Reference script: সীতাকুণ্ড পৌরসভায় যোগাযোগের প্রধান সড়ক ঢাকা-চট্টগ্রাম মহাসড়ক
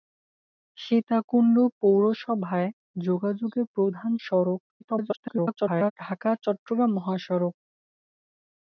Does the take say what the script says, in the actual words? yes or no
no